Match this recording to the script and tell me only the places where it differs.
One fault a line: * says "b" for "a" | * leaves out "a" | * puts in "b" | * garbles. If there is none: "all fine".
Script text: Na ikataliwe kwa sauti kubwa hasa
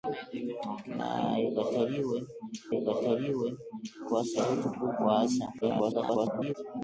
* puts in "ikataliwe"
* garbles